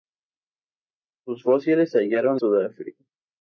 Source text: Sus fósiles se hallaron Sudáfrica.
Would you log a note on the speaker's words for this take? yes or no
no